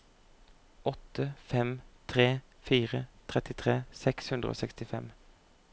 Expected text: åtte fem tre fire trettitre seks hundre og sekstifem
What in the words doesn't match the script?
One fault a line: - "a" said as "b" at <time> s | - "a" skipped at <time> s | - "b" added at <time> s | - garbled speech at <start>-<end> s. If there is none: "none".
none